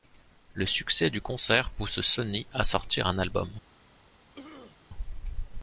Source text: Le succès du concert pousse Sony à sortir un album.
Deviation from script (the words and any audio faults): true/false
true